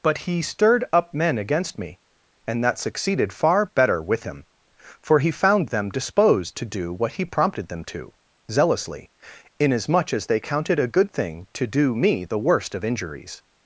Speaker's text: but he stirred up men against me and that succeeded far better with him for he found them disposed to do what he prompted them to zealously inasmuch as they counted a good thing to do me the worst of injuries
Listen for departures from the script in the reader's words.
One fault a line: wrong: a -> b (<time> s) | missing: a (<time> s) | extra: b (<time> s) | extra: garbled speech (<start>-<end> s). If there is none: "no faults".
no faults